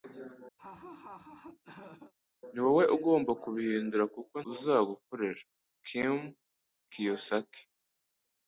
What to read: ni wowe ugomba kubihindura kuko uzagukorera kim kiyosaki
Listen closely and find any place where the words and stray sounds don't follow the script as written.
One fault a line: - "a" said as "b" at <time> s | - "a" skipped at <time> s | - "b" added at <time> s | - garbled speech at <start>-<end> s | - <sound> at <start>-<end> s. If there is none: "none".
- laugh at 0.6-2.1 s